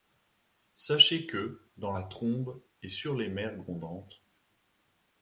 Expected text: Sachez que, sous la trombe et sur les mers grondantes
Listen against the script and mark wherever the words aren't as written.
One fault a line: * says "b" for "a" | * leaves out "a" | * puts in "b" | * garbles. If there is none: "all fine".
* says "dans" for "sous"